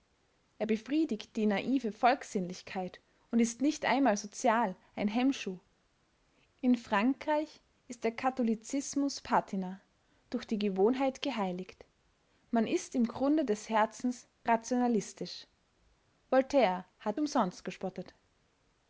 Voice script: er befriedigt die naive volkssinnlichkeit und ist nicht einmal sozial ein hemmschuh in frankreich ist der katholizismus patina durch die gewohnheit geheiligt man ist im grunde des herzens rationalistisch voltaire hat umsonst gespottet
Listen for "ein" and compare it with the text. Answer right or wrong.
right